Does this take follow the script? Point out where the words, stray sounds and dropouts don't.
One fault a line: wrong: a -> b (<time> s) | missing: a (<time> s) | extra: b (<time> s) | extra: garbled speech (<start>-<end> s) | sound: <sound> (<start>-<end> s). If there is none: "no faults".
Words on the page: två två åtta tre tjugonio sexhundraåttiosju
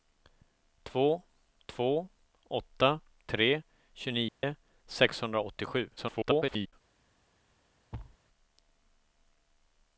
sound: dropout (4.3-4.4 s)
extra: garbled speech (6.0-6.7 s)
sound: thud (7.9-8.2 s)